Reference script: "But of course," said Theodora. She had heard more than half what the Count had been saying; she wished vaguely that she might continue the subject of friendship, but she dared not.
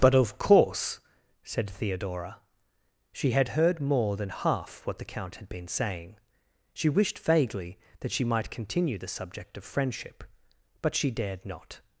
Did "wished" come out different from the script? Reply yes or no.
no